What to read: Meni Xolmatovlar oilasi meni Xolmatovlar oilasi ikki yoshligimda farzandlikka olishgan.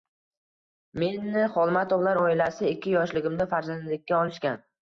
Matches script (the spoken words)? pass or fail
fail